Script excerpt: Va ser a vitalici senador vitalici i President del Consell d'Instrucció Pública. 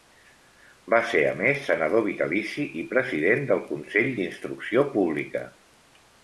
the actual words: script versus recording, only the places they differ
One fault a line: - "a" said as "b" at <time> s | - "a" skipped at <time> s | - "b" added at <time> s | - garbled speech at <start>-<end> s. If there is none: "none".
- "vitalici" said as "més" at 1.4 s